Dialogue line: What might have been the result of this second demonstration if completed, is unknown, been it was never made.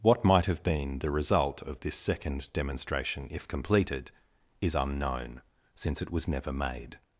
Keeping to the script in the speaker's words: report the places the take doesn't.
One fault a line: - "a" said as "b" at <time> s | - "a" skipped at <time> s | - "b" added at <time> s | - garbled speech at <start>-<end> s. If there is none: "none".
- "been" said as "since" at 5.7 s